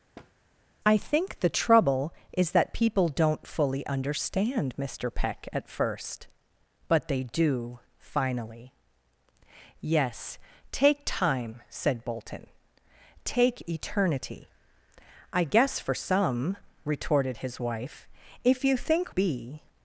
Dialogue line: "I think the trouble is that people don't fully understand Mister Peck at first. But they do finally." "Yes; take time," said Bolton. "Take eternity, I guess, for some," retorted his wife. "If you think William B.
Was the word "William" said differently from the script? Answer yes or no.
yes